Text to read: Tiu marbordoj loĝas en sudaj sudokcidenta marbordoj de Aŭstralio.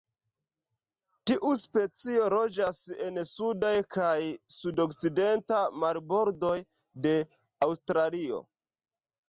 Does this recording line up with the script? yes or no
no